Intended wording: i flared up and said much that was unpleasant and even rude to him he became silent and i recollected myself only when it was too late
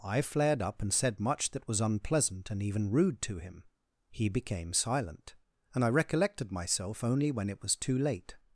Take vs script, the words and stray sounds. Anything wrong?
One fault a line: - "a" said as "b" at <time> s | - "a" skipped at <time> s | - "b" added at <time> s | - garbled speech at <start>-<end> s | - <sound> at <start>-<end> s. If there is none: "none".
none